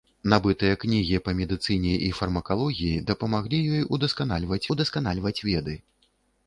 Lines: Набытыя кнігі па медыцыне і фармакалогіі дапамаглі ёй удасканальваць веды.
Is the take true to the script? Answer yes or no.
no